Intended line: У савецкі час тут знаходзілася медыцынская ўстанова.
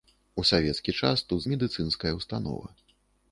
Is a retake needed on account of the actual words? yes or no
yes